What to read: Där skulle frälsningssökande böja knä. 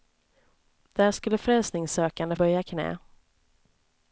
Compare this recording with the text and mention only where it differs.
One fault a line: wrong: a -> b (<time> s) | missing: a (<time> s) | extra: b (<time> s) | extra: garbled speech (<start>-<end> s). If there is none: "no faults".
no faults